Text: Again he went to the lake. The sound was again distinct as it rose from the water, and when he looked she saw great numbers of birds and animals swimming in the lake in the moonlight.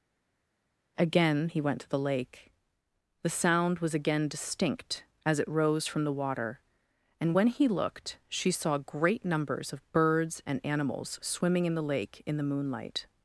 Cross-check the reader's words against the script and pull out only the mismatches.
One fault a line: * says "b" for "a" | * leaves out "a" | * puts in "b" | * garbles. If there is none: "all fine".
all fine